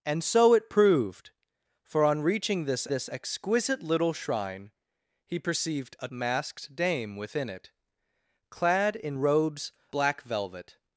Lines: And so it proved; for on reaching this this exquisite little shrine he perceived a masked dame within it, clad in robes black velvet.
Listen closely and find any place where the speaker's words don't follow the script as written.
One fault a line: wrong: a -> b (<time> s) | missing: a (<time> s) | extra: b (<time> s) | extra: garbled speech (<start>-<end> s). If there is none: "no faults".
no faults